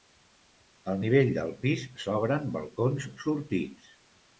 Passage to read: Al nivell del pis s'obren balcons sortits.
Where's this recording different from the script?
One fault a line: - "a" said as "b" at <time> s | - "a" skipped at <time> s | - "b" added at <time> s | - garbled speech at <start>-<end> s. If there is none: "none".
none